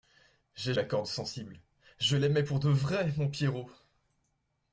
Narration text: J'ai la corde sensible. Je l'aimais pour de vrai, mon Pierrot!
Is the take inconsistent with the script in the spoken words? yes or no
no